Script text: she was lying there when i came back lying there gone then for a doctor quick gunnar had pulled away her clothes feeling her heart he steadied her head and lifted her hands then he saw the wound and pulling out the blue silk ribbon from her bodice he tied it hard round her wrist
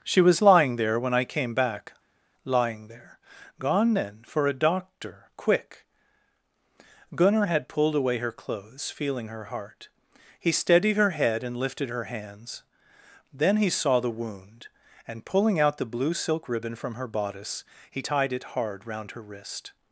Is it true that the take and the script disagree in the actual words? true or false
false